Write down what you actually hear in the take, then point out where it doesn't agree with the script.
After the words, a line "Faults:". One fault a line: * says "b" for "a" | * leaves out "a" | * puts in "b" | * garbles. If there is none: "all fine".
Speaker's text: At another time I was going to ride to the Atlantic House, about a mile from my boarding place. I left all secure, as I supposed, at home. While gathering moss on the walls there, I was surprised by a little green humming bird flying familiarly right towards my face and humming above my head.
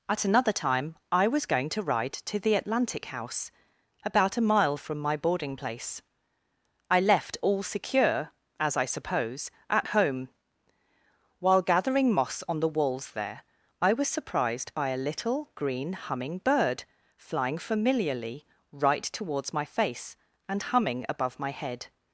At another time I was going to ride to the Atlantic House, about a mile from my boarding place. I left all secure, as I suppose, at home. While gathering moss on the walls there, I was surprised by a little green humming bird flying familiarly right towards my face and humming above my head.
Faults:
* says "suppose" for "supposed"